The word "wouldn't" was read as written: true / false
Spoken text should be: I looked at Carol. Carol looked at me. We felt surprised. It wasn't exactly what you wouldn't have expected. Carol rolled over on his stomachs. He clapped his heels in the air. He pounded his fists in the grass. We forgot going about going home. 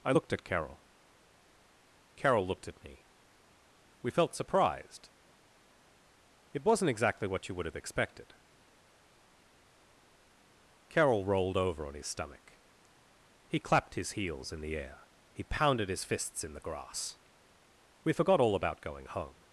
false